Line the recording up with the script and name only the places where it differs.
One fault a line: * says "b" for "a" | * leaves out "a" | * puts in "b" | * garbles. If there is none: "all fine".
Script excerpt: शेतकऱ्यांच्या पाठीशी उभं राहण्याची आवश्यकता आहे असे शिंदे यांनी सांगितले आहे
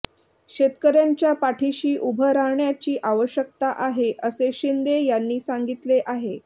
all fine